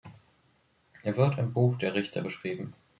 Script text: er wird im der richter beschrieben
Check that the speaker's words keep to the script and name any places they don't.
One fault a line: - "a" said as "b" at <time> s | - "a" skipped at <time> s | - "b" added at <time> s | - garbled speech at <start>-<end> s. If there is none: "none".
- "buch" added at 1.5 s